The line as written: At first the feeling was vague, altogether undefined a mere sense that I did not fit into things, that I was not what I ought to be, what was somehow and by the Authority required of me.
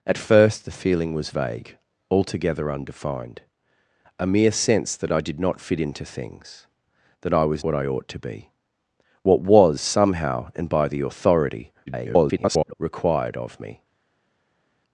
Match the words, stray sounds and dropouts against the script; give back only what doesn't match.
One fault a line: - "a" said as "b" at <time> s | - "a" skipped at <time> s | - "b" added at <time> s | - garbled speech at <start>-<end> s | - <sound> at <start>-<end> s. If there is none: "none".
- "not" skipped at 7.6 s
- garbled speech at 11.9-12.7 s